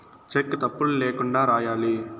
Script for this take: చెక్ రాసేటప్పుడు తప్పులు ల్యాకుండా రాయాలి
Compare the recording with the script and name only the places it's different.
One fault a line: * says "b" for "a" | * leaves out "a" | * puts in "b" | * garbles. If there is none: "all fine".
* leaves out "రాసేటప్పుడు"